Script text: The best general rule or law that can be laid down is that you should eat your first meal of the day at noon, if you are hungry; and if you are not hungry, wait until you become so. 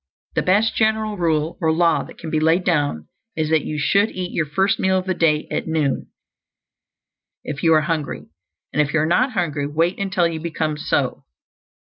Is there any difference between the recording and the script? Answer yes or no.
no